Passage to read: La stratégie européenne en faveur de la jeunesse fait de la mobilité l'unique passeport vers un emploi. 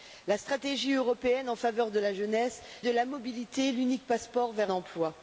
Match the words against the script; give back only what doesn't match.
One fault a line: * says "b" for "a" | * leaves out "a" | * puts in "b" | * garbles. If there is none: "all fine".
* leaves out "fait"
* leaves out "un"